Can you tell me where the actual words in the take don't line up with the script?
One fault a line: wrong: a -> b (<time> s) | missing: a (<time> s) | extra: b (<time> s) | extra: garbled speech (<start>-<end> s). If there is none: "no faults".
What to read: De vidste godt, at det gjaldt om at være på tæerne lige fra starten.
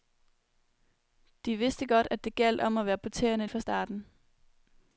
missing: lige (3.5 s)